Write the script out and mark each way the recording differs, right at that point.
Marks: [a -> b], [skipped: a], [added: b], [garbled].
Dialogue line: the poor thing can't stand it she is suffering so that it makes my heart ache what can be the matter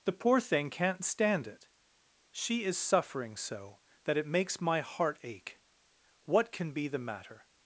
the poor thing can't stand it she is suffering so that it makes my heart ache what can be the matter